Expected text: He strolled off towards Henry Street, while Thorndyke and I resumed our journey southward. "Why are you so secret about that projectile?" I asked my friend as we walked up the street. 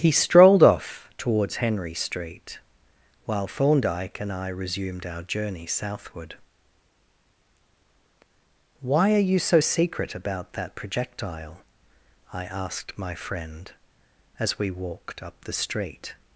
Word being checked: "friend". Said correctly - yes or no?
yes